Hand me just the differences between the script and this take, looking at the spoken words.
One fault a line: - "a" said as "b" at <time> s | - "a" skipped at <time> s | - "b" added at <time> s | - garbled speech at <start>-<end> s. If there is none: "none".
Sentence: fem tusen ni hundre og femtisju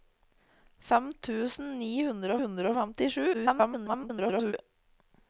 - "hundre" added at 2.4 s
- garbled speech at 3.3-4.5 s